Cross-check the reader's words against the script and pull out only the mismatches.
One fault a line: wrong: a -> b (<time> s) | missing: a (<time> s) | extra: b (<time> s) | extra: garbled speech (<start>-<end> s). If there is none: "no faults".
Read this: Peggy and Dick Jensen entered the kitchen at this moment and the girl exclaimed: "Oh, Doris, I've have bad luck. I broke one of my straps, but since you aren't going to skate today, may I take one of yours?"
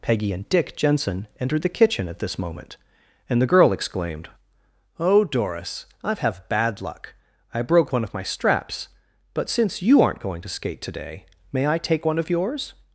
no faults